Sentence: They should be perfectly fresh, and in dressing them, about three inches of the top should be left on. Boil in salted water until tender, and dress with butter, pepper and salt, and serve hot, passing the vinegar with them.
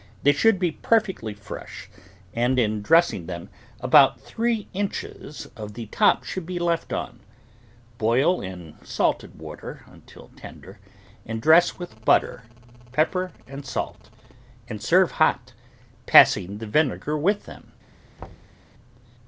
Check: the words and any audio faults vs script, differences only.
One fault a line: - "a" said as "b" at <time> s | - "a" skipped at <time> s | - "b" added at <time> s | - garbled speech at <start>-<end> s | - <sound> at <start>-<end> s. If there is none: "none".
- thud at 18.2-18.6 s